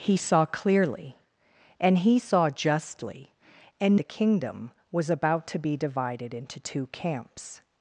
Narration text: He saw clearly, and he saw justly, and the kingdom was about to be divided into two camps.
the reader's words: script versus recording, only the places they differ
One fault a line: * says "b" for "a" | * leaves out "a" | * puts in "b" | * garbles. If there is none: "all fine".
all fine